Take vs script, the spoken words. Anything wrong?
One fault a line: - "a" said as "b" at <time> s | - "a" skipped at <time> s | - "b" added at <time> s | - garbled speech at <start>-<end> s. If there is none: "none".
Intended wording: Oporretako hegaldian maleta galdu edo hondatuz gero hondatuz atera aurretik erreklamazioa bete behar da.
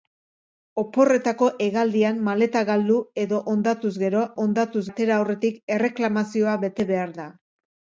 none